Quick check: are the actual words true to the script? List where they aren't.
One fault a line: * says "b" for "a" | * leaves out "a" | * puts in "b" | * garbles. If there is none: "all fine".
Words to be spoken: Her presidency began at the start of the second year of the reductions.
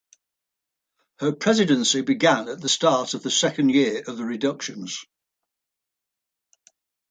all fine